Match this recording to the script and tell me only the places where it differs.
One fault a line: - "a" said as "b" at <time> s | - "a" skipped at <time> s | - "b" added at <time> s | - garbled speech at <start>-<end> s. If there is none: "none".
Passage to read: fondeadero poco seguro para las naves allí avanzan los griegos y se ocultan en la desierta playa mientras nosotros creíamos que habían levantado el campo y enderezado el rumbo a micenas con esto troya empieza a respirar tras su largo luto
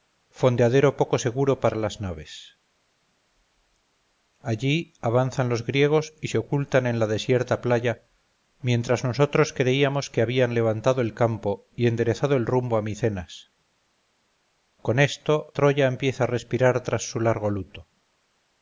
none